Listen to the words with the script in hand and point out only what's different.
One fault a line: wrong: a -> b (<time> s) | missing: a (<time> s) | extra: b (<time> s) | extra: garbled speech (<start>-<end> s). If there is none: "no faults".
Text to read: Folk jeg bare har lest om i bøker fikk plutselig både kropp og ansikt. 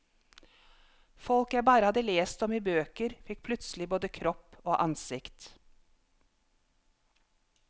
wrong: har -> hadde (1.9 s)